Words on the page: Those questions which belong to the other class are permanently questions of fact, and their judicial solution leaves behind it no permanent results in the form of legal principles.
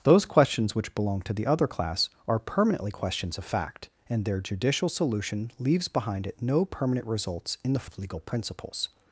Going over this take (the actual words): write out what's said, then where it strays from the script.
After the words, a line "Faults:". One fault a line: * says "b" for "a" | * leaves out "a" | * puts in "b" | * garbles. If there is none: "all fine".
Those questions which belong to the other class are permanently questions of fact, and their judicial solution leaves behind it no permanent results in the of legal principles.
Faults:
* leaves out "form"